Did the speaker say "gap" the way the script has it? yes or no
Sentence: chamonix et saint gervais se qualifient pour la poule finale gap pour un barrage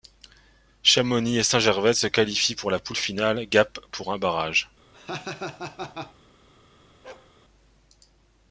yes